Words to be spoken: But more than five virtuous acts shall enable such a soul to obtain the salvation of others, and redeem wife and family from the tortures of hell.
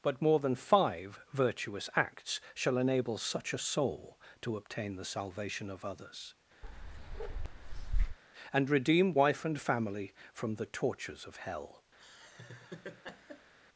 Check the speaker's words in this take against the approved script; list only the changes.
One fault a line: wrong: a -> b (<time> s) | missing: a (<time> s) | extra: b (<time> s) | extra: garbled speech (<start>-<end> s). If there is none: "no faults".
no faults